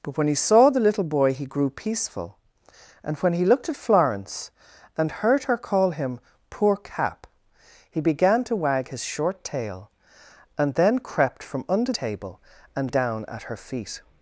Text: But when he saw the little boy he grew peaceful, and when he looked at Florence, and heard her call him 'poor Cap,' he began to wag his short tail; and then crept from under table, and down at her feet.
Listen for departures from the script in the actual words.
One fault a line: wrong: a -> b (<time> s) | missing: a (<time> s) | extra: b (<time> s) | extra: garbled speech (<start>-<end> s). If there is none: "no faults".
no faults